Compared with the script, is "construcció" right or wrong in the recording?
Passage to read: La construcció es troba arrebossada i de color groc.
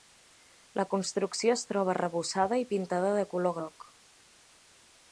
right